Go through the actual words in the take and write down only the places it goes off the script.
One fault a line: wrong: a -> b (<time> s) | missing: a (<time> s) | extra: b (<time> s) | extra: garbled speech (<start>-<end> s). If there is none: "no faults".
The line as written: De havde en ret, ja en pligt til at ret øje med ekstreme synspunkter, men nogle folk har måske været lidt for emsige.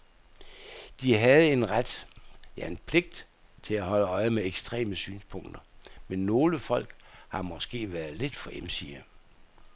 wrong: ret -> holde (3.8 s)